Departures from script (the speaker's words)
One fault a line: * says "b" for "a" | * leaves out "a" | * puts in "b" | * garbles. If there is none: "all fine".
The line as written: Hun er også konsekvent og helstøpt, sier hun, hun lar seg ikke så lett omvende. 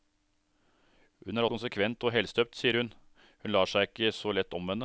* leaves out "også"